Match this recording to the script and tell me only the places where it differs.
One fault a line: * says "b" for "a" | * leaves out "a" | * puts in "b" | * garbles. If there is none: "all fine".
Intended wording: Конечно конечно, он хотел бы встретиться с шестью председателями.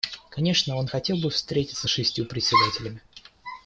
* leaves out "конечно"